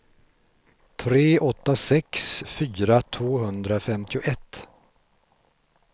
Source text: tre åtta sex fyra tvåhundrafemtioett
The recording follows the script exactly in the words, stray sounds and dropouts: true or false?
true